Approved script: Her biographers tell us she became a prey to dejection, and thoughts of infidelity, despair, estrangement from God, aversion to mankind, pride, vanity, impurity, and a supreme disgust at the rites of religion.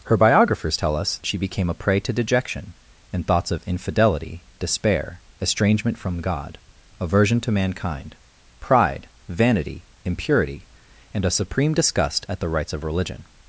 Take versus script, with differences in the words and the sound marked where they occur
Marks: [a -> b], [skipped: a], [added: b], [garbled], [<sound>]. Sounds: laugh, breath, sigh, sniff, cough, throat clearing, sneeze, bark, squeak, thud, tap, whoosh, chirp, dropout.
Her biographers tell us she became a prey to dejection, and thoughts of infidelity, despair, estrangement from God, aversion to mankind, pride, vanity, impurity, and a supreme disgust at the rites of religion.